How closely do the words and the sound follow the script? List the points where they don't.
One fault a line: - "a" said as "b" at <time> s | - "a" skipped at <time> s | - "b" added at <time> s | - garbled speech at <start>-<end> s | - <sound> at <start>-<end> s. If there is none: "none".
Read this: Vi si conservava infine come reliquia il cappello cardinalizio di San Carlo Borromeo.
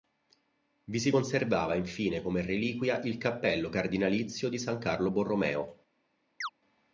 - chirp at 6.4-6.5 s